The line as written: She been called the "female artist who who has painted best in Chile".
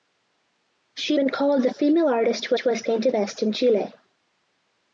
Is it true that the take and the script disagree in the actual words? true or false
false